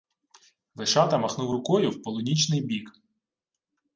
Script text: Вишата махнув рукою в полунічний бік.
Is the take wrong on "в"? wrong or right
right